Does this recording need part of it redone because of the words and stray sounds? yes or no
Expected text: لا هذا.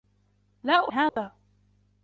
yes